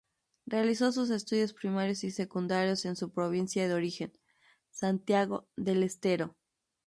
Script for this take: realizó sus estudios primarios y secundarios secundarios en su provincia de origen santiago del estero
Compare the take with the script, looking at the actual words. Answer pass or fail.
fail